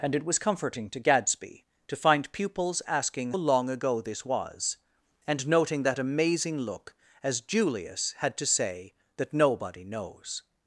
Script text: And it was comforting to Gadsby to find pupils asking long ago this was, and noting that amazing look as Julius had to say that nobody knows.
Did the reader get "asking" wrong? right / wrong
right